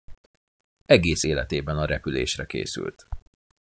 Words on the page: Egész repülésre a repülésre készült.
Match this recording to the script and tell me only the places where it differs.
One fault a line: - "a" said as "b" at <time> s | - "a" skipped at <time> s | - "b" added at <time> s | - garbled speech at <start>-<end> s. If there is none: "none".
- "repülésre" said as "életében" at 1.2 s